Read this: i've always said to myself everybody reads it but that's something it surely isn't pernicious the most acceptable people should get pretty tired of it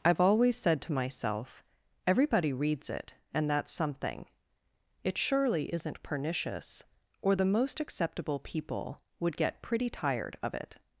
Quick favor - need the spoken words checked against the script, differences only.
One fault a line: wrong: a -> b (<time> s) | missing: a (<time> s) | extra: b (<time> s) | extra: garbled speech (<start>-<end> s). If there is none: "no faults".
wrong: but -> and (3.3 s)
extra: or (7.2 s)
wrong: should -> would (9.2 s)